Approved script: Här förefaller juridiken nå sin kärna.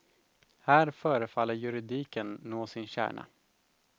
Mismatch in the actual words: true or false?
false